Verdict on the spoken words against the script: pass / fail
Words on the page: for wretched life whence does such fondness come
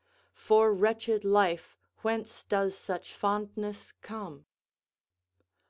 pass